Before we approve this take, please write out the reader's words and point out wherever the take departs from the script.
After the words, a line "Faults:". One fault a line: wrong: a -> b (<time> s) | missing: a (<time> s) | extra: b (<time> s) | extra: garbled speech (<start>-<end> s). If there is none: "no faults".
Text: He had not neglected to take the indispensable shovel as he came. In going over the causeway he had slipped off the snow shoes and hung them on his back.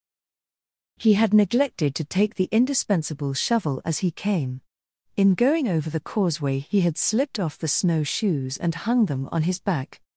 He had neglected to take the indispensable shovel as he came. In going over the causeway he had slipped off the snow shoes and hung them on his back.
Faults:
missing: not (1.3 s)